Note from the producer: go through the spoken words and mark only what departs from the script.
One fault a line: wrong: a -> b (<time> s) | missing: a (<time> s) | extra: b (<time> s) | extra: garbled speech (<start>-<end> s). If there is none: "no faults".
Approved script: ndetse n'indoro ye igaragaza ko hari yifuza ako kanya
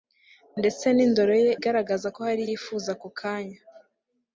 no faults